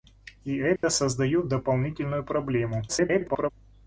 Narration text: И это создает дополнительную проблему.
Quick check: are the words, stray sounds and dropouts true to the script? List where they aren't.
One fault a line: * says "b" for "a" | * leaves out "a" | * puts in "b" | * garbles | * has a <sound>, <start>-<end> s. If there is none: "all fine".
* has a dropout, 0.8-0.8 s
* garbles